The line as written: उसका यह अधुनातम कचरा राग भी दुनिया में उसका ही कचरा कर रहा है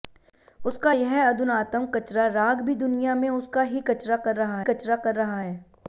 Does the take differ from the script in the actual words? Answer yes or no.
yes